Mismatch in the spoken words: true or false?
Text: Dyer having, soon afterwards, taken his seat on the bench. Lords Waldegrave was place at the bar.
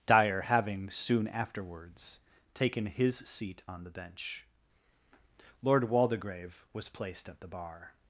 true